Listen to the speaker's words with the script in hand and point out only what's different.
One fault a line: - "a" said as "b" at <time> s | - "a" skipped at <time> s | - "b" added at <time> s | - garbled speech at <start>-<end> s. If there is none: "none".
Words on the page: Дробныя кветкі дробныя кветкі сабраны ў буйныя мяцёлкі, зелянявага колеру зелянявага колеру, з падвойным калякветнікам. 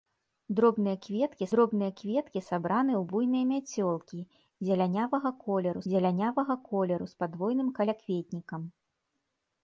none